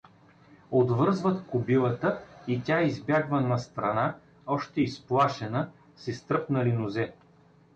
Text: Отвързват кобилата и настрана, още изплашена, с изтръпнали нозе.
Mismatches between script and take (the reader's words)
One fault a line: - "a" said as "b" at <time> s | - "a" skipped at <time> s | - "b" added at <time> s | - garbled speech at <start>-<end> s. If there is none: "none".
- "тя избягва" added at 2.6 s